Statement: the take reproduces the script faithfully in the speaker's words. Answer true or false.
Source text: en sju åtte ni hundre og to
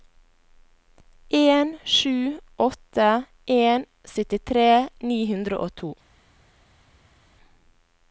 false